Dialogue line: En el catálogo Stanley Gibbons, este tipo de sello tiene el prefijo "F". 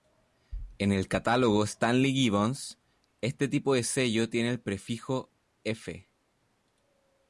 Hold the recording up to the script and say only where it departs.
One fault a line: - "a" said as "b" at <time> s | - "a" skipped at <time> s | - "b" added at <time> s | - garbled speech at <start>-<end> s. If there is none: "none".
none